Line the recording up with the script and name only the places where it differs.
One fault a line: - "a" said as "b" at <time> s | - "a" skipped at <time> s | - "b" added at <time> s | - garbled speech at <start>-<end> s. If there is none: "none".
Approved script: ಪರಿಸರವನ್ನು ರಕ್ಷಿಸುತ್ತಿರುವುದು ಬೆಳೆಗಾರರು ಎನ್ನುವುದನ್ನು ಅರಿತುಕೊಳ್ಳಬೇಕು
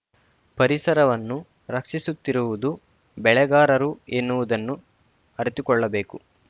none